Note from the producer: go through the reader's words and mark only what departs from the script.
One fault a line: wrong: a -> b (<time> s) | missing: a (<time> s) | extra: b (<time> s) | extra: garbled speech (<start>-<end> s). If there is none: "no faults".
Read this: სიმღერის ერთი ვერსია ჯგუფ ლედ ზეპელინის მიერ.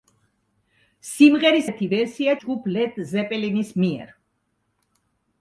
no faults